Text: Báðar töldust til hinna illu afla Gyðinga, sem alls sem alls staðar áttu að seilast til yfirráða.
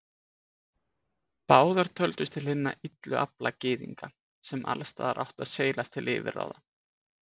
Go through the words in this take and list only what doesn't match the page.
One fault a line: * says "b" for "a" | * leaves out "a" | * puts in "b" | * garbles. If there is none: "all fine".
* leaves out "sem alls"